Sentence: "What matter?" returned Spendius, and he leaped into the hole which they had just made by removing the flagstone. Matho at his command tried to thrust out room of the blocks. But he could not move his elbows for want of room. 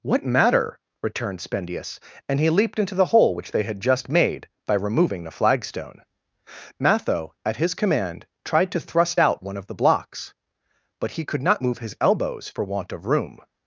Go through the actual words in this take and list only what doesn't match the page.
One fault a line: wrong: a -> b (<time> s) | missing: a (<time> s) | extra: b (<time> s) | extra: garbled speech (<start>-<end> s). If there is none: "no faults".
wrong: room -> one (9.4 s)